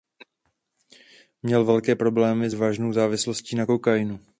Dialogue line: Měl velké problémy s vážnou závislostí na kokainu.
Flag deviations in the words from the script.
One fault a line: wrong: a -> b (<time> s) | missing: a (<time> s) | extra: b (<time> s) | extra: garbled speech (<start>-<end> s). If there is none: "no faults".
no faults